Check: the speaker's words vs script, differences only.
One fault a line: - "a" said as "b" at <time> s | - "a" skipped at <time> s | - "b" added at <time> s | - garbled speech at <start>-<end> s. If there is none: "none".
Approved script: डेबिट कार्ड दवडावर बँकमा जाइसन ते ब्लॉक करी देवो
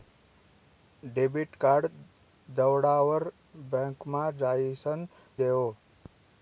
- "ते ब्लॉक करी" skipped at 5.1 s